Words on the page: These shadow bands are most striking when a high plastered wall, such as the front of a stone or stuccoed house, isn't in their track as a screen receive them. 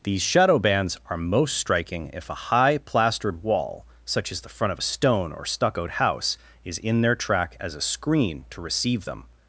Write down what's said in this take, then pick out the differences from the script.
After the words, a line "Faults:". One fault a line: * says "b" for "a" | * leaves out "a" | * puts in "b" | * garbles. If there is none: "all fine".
These shadow bands are most striking if a high plastered wall, such as the front of a stone or stuccoed house, is in their track as a screen to receive them.
Faults:
* says "if" for "when"
* says "is" for "isn't"
* puts in "to"